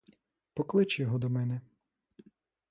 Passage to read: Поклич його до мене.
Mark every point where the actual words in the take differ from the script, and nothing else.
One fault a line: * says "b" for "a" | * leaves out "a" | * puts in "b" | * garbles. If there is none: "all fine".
all fine